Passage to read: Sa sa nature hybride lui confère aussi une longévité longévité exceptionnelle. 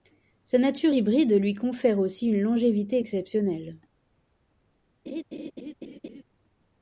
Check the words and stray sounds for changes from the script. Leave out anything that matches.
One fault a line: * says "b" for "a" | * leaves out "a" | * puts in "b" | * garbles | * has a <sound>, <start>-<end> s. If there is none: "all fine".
* leaves out "sa"
* leaves out "longévité"
* has a laugh, 5.1-6.2 s